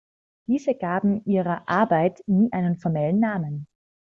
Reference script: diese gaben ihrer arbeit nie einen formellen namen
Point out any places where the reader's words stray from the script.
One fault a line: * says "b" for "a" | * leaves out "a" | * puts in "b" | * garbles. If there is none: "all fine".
all fine